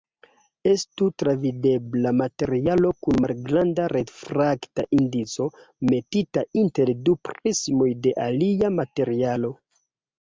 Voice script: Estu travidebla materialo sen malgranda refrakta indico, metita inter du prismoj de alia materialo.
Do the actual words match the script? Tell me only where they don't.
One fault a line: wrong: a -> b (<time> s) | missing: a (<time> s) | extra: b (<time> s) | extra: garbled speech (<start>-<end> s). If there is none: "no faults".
wrong: sen -> kun (3.1 s)